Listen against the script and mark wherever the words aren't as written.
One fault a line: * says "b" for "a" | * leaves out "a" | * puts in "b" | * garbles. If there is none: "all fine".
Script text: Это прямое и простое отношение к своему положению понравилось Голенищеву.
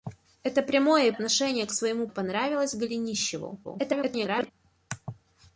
* leaves out "простое"
* leaves out "положению"
* garbles